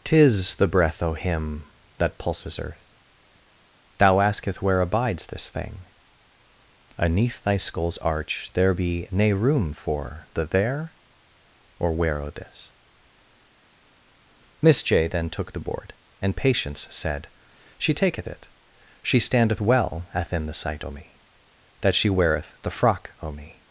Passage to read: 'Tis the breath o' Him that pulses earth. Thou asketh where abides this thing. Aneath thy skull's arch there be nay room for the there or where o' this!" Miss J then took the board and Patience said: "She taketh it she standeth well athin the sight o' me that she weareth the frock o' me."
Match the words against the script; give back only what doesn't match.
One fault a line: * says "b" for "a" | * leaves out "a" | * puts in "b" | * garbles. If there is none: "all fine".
all fine